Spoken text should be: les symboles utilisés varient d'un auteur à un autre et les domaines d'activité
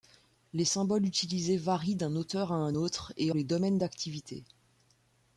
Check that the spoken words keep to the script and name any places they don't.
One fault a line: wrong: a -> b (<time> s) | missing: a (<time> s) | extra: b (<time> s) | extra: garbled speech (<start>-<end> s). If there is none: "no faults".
no faults